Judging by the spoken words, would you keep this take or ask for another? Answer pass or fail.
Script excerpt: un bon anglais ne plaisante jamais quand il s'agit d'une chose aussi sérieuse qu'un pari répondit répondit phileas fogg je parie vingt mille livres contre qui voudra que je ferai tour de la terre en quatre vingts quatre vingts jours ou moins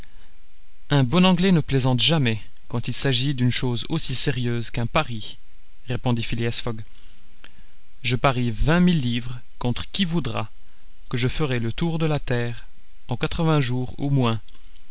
fail